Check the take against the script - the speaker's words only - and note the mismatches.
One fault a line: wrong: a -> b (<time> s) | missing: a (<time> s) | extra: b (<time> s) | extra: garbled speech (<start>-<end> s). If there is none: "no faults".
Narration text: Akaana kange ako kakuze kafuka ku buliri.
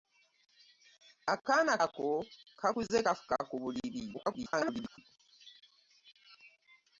missing: kange (1.7 s)
extra: garbled speech (4.1-5.0 s)